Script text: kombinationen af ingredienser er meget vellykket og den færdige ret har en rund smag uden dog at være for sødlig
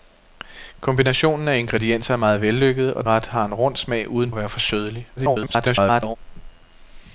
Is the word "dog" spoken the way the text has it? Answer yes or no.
no